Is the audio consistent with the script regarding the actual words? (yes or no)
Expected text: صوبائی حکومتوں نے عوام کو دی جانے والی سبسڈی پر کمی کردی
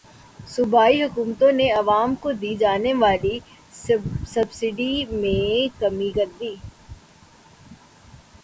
no